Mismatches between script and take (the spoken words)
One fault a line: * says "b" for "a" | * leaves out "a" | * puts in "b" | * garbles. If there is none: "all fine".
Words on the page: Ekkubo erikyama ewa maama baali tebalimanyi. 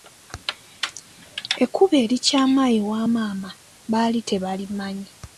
all fine